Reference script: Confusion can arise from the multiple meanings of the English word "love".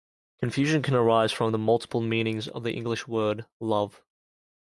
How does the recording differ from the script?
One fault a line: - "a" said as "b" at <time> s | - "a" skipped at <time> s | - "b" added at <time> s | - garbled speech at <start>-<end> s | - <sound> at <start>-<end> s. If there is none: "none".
none